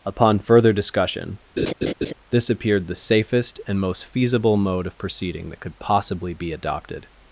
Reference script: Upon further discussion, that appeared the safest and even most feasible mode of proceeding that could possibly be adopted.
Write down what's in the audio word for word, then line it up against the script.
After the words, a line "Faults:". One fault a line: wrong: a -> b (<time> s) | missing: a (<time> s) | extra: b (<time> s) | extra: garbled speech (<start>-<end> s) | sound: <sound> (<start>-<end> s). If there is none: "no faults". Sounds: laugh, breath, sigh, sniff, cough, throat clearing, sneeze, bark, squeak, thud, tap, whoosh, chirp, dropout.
Upon further discussion, this appeared the safest and most feasible mode of proceeding that could possibly be adopted.
Faults:
sound: laugh (1.6-2.1 s)
wrong: that -> this (2.3 s)
missing: even (3.8 s)